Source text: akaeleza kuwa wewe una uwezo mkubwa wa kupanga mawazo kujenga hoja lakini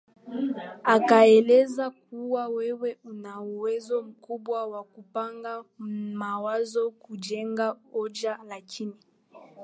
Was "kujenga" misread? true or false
false